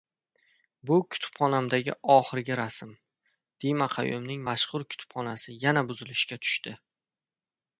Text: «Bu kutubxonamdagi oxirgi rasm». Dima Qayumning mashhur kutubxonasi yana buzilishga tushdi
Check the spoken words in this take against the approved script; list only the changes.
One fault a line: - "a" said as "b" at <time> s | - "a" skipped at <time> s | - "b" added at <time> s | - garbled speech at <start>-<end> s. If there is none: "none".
none